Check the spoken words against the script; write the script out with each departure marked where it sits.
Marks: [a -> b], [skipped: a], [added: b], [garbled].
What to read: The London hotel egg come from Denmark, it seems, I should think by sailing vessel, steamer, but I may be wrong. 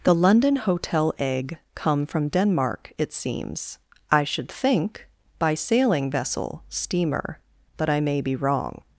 The London hotel egg come from Denmark, it seems, I should think by sailing vessel, steamer, but I may be wrong.